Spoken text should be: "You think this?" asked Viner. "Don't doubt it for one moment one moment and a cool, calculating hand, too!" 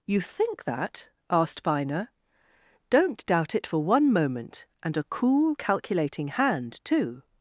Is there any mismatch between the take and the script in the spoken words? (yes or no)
yes